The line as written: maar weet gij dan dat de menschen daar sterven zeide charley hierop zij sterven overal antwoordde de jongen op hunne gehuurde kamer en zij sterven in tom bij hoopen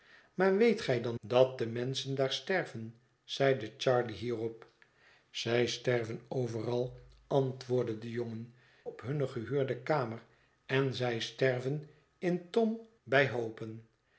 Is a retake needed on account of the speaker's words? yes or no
no